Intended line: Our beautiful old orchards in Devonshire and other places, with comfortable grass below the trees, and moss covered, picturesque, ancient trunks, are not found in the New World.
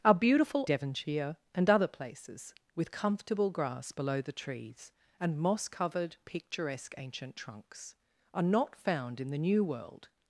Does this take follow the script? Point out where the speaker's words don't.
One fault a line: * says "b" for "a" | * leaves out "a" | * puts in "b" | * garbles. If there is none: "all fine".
* leaves out "old orchards in"